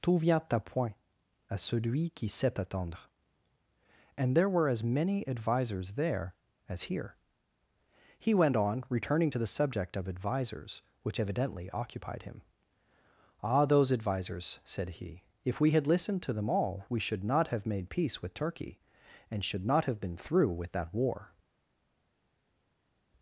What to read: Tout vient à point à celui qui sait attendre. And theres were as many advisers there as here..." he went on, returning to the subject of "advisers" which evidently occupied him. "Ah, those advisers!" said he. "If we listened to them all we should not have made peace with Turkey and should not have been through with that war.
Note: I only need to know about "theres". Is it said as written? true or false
false